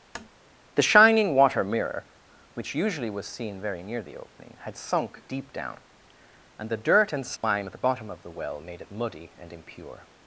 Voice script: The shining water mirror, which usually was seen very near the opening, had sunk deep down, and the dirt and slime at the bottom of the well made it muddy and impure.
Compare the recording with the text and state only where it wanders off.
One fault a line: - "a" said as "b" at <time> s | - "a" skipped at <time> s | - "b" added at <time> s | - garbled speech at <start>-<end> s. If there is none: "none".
none